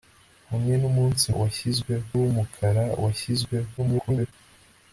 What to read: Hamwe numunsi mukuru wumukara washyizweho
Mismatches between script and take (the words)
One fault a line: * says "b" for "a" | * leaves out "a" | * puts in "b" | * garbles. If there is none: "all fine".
* says "washyizweho" for "mukuru"
* garbles